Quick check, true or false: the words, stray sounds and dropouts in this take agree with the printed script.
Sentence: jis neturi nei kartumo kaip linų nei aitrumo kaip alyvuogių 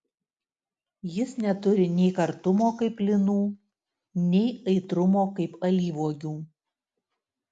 true